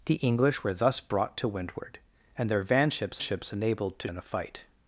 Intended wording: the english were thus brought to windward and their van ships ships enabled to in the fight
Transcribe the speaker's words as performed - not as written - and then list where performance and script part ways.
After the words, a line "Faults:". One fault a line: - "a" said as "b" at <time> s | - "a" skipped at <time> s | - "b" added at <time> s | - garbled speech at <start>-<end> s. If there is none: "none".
the english were thus brought to windward and their van ships ships enabled to in the fight
Faults:
none